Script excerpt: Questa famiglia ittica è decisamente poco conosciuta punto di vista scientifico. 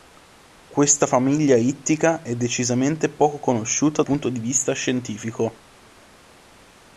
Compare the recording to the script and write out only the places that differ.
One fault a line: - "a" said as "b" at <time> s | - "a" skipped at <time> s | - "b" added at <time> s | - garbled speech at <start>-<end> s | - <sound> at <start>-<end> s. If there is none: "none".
none